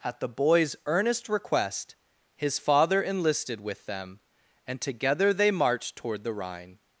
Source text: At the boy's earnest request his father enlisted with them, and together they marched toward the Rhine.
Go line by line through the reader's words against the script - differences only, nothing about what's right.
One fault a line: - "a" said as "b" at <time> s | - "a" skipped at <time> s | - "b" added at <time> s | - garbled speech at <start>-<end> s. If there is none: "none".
none